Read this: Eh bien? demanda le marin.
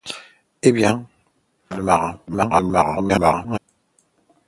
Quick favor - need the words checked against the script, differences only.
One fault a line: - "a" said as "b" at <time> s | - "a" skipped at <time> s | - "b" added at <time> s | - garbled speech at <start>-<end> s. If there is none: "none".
- "demanda" skipped at 1.1 s
- garbled speech at 2.3-3.6 s